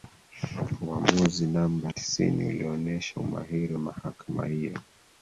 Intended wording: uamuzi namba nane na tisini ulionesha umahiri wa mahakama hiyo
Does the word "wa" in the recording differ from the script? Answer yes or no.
yes